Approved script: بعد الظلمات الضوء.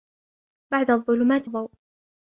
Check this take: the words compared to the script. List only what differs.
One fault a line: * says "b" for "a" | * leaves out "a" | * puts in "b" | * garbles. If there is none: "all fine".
all fine